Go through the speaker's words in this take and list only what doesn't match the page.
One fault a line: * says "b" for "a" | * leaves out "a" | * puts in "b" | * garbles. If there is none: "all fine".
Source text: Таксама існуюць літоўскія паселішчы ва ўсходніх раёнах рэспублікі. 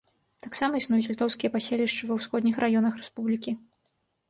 all fine